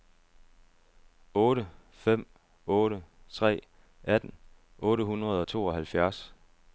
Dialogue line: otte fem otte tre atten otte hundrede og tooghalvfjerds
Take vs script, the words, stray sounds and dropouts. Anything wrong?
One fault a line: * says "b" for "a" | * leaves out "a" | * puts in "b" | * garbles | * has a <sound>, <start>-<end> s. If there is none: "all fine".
all fine